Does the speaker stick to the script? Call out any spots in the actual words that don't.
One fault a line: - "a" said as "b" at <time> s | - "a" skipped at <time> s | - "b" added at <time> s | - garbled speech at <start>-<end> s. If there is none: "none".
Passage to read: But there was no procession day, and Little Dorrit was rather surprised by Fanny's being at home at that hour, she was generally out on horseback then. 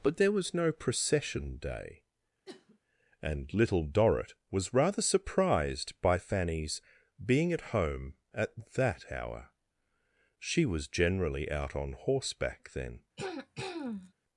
none